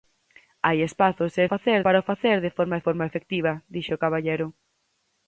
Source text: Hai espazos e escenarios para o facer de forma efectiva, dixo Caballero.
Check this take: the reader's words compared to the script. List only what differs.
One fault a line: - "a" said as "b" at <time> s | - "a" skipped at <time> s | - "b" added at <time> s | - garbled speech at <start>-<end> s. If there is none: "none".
- "escenarios" said as "facer" at 1.5 s
- "forma" added at 2.9 s